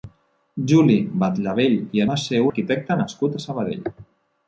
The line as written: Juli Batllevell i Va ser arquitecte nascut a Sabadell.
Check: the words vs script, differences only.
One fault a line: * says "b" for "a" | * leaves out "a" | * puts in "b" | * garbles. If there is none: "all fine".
all fine